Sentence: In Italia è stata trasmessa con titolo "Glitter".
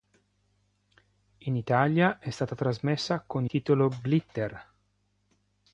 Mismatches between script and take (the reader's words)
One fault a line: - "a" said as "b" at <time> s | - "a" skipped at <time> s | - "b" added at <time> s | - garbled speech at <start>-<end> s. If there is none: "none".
none